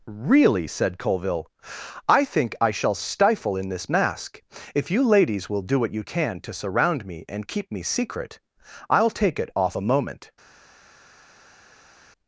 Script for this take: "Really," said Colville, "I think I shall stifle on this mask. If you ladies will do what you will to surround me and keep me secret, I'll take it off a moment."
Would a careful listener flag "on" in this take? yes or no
yes